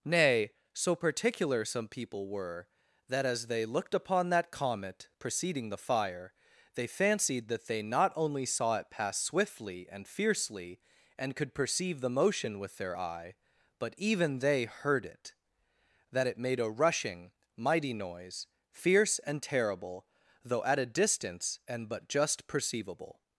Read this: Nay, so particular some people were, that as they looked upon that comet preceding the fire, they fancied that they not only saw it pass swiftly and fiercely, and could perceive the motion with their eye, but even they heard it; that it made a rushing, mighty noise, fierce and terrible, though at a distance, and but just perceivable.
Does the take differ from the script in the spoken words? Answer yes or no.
no